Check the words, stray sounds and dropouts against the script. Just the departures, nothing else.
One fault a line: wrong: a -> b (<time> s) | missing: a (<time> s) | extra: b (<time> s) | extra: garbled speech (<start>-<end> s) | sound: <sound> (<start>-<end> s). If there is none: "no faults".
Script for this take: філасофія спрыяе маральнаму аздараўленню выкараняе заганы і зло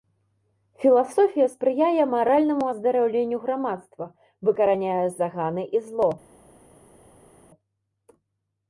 extra: грамадства (3.4 s)